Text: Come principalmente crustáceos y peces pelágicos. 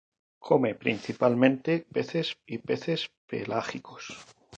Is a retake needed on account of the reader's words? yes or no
yes